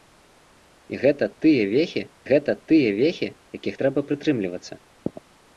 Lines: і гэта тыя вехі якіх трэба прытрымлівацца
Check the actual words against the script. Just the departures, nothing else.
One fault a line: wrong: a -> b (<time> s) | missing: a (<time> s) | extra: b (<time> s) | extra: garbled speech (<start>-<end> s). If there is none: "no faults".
extra: гэта тыя вехі (2.3 s)